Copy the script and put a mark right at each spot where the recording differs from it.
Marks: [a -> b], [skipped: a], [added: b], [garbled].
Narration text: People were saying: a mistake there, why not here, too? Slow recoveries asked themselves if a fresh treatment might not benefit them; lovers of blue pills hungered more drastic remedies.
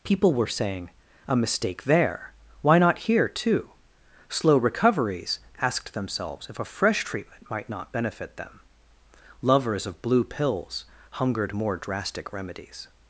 People were saying: a mistake there, why not here, too? Slow recoveries asked themselves if a fresh treatment might not benefit them; lovers of blue pills hungered more drastic remedies.